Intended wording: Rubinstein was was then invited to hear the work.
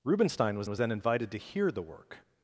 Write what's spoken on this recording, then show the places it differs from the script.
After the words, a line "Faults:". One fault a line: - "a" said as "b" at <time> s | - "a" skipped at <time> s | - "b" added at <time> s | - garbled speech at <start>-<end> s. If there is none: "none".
Rubinstein was was then invited to hear the work.
Faults:
none